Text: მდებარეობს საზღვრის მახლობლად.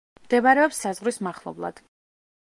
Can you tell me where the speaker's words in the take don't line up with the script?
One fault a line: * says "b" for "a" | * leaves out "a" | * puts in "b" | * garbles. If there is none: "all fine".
all fine